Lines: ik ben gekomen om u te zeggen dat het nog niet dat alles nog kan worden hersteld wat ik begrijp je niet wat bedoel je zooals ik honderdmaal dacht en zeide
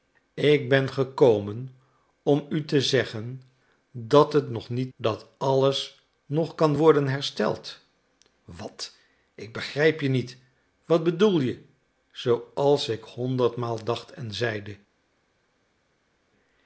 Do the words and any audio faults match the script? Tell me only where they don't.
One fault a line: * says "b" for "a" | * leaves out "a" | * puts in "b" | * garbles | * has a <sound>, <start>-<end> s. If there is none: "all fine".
all fine